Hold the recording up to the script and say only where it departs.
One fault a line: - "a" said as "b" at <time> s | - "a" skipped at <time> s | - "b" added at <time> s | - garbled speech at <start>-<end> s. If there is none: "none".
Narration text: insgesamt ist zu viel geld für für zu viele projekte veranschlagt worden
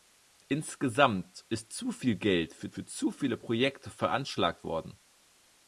none